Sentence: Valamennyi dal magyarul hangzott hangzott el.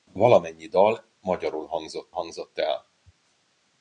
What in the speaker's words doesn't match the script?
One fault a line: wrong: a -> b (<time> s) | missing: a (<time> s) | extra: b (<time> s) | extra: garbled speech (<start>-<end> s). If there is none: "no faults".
no faults